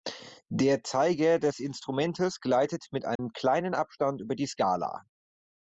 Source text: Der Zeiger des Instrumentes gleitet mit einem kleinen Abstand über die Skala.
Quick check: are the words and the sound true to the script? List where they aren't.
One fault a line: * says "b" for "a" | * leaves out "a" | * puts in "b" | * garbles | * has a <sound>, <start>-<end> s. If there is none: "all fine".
* has a dropout, 3.2-3.2 s